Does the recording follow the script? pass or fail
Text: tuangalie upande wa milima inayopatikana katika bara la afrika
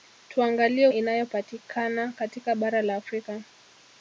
fail